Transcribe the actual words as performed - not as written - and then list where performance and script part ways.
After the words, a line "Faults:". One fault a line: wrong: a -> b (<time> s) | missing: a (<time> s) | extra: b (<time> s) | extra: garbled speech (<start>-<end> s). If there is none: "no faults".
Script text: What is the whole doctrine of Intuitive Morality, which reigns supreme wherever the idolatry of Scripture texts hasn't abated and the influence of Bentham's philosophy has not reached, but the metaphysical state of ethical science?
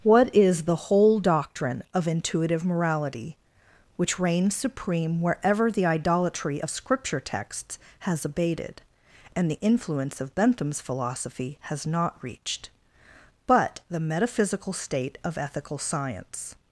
What is the whole doctrine of Intuitive Morality, which reigns supreme wherever the idolatry of Scripture texts has abated and the influence of Bentham's philosophy has not reached, but the metaphysical state of ethical science?
Faults:
wrong: hasn't -> has (8.0 s)